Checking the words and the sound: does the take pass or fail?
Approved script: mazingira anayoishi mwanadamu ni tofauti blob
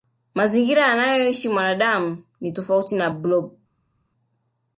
fail